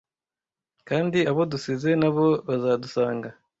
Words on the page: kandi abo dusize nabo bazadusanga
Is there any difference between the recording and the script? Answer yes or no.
no